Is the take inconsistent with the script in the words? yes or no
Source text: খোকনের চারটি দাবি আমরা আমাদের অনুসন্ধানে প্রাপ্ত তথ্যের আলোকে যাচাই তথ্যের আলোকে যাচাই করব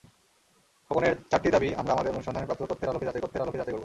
no